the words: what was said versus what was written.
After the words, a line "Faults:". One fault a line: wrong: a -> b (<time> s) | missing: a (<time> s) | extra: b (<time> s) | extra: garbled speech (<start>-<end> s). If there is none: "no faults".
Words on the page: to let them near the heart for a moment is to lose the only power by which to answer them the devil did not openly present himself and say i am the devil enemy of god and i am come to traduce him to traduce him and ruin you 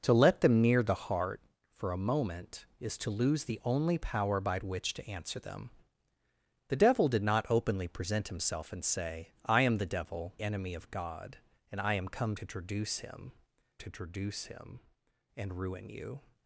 to let them near the heart for a moment is to lose the only power by which to answer them the devil did not openly present himself and say i am the devil enemy of god and i am come to traduce him to traduce him and ruin you
Faults:
no faults